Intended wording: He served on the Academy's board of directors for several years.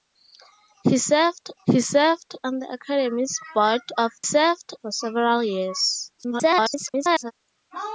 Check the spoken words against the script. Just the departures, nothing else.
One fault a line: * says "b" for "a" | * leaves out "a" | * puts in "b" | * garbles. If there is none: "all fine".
* puts in "he served"
* says "served" for "directors"
* garbles